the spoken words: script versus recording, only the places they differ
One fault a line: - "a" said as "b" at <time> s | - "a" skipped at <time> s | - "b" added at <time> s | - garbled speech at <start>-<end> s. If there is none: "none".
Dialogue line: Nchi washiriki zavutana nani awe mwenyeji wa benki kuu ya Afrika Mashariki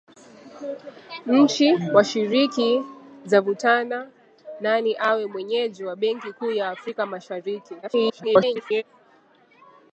- garbled speech at 7.8-8.8 s